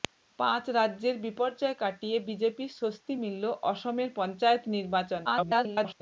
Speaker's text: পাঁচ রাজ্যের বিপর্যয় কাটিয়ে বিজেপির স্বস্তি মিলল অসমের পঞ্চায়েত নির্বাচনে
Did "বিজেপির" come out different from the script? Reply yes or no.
no